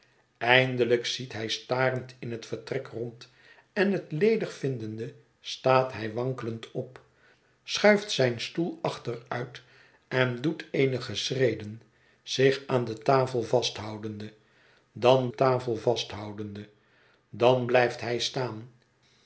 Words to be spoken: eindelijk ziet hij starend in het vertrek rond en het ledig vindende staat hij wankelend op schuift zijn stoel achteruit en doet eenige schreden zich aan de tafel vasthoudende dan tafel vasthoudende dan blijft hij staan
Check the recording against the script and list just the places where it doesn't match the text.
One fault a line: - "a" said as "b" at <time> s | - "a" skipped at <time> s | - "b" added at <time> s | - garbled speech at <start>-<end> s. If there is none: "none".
none